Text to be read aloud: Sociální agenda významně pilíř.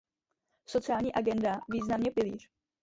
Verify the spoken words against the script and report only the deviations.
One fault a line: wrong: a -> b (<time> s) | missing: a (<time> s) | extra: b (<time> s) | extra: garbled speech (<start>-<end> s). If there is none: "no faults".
no faults